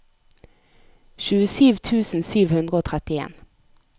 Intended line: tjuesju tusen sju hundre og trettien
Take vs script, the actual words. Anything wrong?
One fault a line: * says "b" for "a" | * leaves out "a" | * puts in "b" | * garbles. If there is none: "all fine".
all fine